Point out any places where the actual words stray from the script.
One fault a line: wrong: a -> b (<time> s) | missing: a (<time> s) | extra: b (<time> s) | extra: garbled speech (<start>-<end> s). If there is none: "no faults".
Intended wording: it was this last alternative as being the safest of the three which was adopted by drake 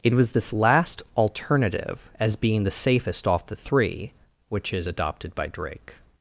wrong: of -> off (3.3 s)
wrong: was -> is (4.7 s)